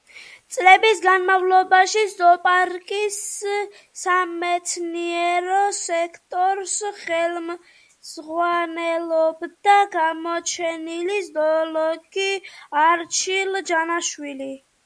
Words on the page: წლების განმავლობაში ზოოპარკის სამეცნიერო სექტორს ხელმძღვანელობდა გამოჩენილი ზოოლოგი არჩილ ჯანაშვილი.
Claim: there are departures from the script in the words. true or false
false